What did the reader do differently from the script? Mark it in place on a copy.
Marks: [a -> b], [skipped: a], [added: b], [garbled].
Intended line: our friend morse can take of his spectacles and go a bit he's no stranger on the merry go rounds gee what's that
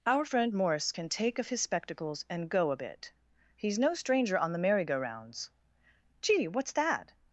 our friend morse can take of his spectacles and go a bit he's no stranger on the merry go rounds gee what's that